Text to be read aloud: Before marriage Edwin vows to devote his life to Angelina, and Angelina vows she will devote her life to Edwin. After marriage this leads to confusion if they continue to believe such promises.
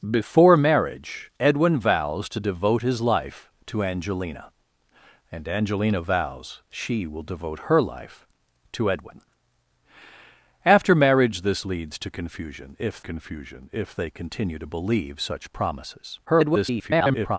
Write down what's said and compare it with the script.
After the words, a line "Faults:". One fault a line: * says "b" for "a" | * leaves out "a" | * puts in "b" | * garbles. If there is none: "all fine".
Before marriage Edwin vows to devote his life to Angelina, and Angelina vows she will devote her life to Edwin. After marriage this leads to confusion if confusion if they continue to believe such promises. [garbled]
Faults:
* puts in "confusion if"
* garbles